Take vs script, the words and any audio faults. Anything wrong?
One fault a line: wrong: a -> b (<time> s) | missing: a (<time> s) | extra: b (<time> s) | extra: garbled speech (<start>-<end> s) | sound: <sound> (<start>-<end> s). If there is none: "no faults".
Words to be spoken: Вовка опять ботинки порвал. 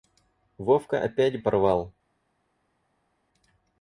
missing: ботинки (1.4 s)